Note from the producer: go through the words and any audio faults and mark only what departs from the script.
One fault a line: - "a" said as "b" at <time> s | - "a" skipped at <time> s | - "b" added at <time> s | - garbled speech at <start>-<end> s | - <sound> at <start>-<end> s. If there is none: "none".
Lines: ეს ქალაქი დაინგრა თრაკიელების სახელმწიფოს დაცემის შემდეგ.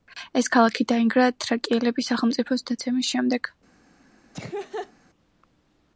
- laugh at 4.3-4.9 s